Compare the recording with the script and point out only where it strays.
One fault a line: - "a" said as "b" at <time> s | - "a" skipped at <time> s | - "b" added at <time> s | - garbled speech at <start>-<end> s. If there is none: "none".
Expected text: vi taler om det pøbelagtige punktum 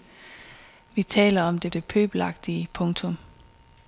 - "det" added at 1.7 s